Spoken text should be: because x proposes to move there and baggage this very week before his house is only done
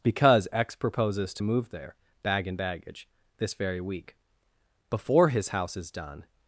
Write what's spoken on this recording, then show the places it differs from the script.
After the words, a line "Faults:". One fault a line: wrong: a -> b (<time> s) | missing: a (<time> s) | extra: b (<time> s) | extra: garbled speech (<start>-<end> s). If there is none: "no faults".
because x proposes to move there bag and baggage this very week before his house is done
Faults:
extra: bag (2.2 s)
missing: only (5.9 s)